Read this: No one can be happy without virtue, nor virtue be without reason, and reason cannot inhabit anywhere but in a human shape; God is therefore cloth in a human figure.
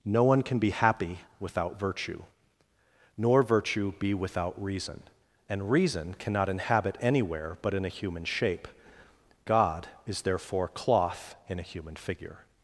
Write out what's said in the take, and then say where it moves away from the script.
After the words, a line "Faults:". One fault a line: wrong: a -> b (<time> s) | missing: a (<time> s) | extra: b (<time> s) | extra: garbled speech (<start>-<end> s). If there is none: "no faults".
No one can be happy without virtue, nor virtue be without reason, and reason cannot inhabit anywhere but in a human shape; God is therefore cloth in a human figure.
Faults:
no faults